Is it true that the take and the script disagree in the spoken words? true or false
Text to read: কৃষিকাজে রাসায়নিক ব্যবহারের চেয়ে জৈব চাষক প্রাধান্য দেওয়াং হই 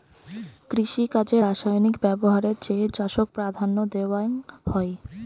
true